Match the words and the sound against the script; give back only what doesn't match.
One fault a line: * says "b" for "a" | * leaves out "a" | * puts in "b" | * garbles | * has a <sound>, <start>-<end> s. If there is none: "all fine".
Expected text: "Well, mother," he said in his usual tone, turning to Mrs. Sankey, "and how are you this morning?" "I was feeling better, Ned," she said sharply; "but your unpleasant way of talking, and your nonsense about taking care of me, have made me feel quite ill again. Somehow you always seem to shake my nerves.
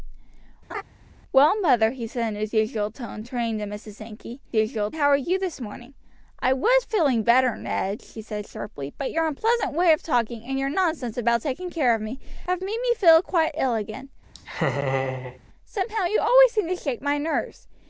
* has a laugh, 0.7-0.8 s
* says "usual" for "and"
* has a laugh, 14.3-15.4 s